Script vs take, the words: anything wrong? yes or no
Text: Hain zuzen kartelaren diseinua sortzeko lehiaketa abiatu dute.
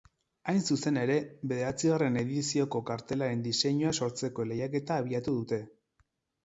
yes